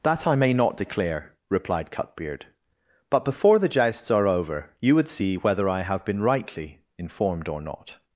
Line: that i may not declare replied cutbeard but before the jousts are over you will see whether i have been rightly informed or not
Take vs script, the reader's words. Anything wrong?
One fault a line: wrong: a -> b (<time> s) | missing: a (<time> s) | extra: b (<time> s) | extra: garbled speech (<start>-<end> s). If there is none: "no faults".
wrong: will -> would (5.0 s)